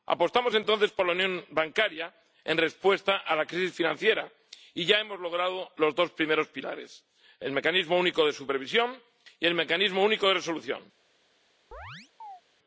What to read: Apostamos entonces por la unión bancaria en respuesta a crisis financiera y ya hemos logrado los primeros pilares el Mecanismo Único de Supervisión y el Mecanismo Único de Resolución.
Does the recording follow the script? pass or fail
fail